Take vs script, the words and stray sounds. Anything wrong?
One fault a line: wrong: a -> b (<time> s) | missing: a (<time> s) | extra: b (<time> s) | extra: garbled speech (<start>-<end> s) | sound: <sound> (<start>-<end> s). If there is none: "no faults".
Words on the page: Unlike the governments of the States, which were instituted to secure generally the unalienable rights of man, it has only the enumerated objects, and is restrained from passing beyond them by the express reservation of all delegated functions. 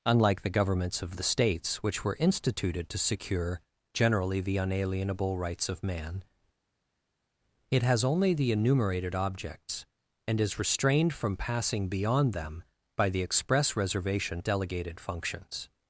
missing: of all (14.4 s)